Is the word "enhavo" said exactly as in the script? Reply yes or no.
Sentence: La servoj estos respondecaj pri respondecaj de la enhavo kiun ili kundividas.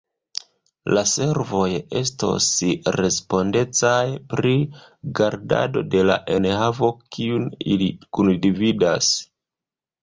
yes